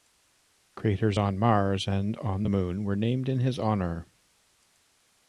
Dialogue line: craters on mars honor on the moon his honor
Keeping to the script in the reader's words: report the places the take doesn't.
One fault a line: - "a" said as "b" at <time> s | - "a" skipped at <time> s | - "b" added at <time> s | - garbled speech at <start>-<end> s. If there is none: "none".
- "honor" said as "and" at 1.9 s
- "were named in" added at 2.8 s